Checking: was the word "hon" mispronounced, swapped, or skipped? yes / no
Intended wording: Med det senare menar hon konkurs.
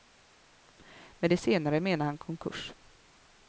yes